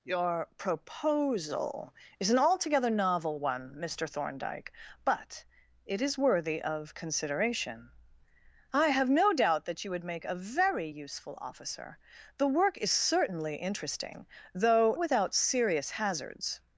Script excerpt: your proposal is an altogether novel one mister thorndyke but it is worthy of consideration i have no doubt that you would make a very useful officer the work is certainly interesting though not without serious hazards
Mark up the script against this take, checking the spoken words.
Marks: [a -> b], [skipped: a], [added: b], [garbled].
your proposal is an altogether novel one mister thorndyke but it is worthy of consideration i have no doubt that you would make a very useful officer the work is certainly interesting though [skipped: not] without serious hazards